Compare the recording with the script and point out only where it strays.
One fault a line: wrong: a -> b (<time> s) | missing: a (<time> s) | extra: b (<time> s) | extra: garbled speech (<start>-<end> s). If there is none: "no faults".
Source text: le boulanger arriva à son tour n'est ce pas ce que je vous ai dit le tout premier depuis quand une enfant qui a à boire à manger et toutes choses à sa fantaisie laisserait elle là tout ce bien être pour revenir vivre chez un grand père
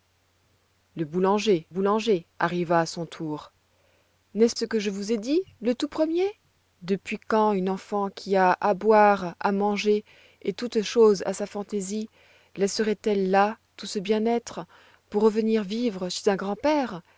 extra: boulanger (1.7 s)
missing: pas (4.6 s)